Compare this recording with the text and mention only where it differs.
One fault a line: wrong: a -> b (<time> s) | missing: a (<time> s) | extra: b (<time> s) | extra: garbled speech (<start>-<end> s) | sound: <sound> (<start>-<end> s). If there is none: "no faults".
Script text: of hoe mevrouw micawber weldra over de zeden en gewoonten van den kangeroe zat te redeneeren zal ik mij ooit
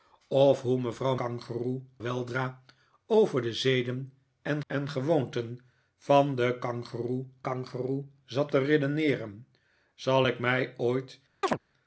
wrong: micawber -> kangeroe (1.1 s)
extra: en (4.7 s)
extra: kangeroe (7.4 s)
sound: chirp (11.4-11.6 s)